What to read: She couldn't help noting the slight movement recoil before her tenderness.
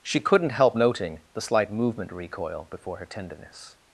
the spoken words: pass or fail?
pass